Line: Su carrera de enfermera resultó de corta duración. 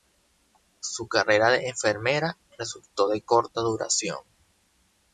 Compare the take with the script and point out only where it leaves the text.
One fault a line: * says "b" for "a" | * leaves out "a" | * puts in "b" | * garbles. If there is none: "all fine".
all fine